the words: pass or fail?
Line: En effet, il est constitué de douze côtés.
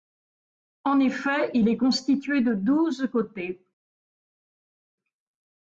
pass